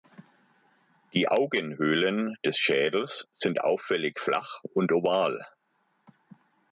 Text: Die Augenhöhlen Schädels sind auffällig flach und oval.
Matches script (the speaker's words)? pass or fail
fail